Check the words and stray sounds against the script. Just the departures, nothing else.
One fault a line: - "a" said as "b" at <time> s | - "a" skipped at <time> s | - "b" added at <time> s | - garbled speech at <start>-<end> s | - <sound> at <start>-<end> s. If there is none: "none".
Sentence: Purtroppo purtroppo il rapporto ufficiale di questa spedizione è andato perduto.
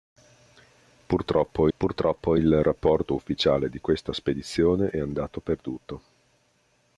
none